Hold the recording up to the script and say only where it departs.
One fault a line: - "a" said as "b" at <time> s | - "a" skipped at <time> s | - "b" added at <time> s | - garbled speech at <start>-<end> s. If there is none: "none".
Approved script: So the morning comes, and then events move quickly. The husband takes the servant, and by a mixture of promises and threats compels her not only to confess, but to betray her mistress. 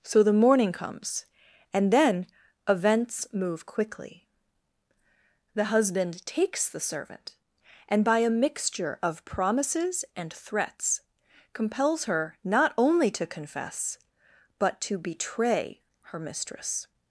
none